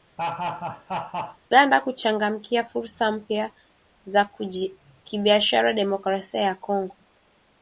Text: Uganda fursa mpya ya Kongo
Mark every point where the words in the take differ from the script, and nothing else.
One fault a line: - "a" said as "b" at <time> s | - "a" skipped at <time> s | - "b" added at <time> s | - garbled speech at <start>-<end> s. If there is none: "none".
- "kuchangamkia" added at 1.8 s
- "za kibiashara Demokrasia" added at 4.0 s